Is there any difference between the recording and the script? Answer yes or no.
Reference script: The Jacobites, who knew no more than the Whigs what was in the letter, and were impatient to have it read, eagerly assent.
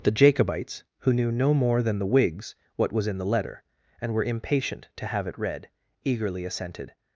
yes